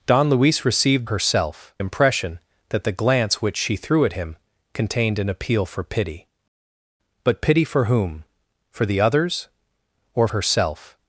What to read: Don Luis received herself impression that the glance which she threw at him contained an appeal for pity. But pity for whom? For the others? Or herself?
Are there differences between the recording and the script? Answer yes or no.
no